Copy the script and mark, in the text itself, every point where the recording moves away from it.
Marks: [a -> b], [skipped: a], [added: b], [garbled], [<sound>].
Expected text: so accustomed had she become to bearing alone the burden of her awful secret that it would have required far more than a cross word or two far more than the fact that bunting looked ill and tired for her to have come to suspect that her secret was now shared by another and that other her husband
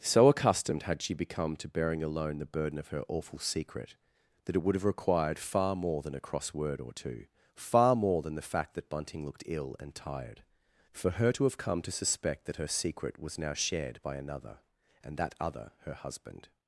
so accustomed had she become to bearing alone the burden of her awful secret that it would have required far more than a cross word or two far more than the fact that bunting looked ill and tired for her to have come to suspect that her secret was now shared by another and that other her husband